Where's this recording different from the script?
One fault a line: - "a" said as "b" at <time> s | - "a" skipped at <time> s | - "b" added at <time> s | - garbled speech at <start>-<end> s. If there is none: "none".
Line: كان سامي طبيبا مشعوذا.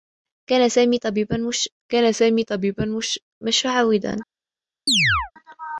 - "كان سامي طبيبا" added at 1.9 s